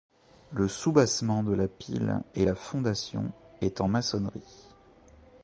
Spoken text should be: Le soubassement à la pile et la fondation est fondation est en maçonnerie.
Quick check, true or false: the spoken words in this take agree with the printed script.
false